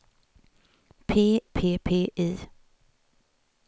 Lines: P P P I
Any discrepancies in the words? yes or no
no